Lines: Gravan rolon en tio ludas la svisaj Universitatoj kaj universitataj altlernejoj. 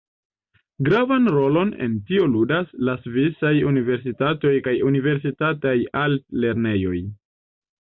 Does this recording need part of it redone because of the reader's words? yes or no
no